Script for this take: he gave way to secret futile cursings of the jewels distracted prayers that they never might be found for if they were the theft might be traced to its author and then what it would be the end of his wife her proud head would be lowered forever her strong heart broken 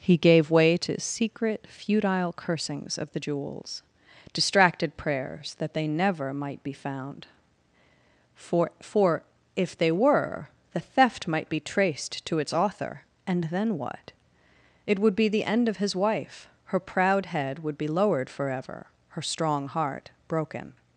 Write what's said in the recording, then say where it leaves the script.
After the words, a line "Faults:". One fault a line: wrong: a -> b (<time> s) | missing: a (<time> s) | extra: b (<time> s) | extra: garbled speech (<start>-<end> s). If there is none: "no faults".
he gave way to secret futile cursings of the jewels distracted prayers that they never might be found for for if they were the theft might be traced to its author and then what it would be the end of his wife her proud head would be lowered forever her strong heart broken
Faults:
extra: for (8.8 s)